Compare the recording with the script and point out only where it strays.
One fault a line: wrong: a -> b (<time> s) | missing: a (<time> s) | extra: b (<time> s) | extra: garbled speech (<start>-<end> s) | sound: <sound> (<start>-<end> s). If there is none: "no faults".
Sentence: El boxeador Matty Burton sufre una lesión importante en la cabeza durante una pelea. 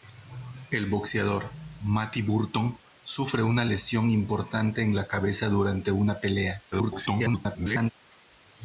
extra: garbled speech (6.7-7.9 s)